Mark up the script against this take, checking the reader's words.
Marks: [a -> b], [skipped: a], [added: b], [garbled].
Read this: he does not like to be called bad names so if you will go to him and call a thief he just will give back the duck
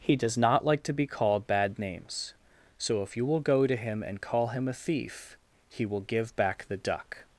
he does not like to be called bad names so if you will go to him and call [added: him] a thief he [skipped: just] will give back the duck